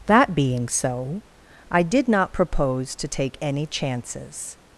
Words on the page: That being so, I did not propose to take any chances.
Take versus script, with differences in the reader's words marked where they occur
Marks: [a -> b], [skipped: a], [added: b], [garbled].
That being so, I did not propose to take any chances.